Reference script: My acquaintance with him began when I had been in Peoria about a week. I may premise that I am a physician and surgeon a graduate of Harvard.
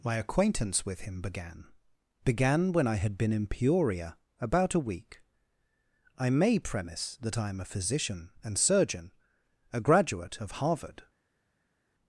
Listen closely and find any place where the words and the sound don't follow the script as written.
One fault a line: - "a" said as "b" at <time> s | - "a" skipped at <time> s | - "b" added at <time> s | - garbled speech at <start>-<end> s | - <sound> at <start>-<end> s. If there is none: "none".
- "began" added at 2.2 s